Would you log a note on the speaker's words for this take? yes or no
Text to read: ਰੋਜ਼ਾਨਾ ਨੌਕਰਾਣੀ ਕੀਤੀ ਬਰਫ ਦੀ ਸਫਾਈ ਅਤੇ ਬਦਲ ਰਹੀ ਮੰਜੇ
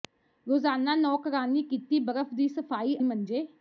yes